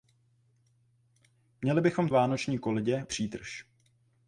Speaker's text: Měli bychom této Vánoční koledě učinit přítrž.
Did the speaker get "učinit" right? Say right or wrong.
wrong